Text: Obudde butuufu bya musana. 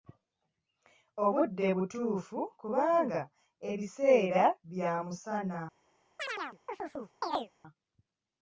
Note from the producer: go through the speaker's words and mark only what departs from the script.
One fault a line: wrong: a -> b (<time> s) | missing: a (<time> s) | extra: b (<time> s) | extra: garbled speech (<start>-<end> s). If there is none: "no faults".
extra: kubanga ebiseera (2.6 s)